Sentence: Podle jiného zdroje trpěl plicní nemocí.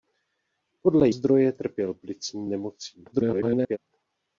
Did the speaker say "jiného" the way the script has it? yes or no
no